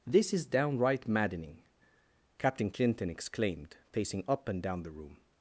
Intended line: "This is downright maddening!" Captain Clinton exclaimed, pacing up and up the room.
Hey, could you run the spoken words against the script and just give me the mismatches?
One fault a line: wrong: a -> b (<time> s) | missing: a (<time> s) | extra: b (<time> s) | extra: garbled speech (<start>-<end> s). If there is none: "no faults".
wrong: up -> down (4.6 s)